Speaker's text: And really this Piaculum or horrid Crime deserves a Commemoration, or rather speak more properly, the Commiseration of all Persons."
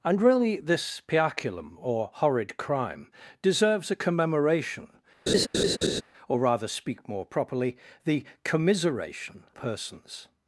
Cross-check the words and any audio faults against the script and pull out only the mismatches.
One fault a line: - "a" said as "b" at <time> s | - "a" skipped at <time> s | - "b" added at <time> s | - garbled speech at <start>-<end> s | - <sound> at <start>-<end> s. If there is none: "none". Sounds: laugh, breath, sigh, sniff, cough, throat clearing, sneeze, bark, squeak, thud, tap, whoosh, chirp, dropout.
- laugh at 5.3-6.0 s
- "of all" skipped at 9.4 s